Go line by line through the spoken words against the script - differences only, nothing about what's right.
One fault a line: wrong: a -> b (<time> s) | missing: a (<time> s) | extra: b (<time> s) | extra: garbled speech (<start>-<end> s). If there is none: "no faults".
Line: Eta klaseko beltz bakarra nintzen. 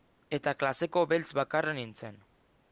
no faults